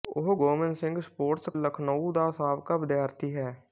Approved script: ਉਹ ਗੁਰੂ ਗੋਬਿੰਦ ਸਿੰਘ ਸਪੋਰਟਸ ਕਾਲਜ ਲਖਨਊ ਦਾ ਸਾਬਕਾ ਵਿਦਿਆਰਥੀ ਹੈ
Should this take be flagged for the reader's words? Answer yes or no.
yes